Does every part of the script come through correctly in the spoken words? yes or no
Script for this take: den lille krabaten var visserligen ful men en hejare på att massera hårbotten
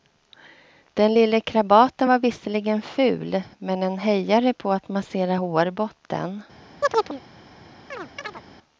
yes